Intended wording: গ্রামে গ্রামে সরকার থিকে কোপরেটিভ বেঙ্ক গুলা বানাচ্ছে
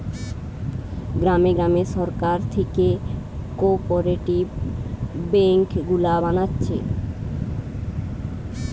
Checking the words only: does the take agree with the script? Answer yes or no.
yes